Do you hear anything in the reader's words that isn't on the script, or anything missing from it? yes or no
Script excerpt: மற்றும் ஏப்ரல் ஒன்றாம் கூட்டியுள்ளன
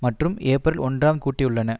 no